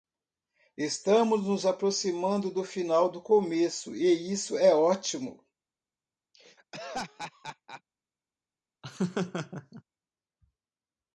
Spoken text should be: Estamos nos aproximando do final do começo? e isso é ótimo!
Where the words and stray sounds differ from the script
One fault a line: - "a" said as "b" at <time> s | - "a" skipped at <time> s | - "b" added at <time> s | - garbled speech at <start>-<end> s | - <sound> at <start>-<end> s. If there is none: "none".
- laugh at 6.3-7.8 s
- laugh at 8.8-9.8 s